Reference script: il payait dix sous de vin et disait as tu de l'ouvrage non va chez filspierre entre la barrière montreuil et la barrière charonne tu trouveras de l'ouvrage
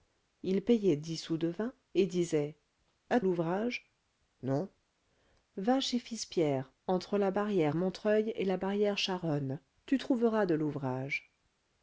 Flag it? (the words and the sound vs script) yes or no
yes